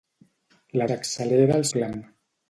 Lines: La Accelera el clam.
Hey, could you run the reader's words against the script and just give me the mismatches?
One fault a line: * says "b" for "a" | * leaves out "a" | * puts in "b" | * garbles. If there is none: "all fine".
all fine